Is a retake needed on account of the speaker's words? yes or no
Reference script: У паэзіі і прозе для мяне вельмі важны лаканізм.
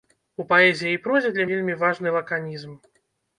yes